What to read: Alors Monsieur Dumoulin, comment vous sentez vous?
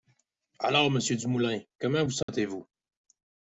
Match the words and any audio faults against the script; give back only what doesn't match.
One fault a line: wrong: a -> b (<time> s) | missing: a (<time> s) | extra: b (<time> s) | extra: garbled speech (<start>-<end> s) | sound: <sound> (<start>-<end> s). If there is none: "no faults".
sound: dropout (2.2-2.3 s)